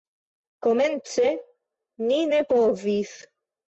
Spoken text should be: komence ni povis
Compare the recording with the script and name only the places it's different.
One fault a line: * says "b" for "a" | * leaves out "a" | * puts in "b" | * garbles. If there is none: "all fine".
* puts in "ne"